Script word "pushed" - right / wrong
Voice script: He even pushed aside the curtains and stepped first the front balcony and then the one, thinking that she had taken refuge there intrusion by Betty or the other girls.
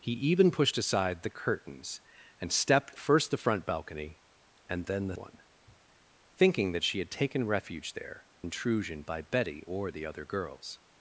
right